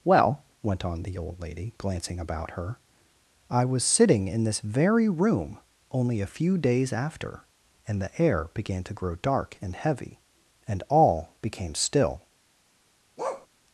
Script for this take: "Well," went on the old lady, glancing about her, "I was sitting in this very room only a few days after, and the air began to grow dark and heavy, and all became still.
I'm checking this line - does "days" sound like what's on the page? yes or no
yes